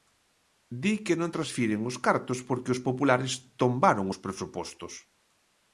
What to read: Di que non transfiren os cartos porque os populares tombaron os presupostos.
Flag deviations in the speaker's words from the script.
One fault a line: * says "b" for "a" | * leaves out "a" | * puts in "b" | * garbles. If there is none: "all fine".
all fine